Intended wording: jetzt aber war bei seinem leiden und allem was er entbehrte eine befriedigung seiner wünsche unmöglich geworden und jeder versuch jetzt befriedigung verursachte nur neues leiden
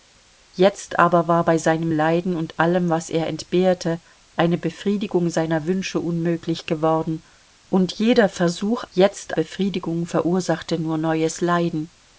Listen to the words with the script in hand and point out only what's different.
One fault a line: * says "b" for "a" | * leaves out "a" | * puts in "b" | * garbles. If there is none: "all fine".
all fine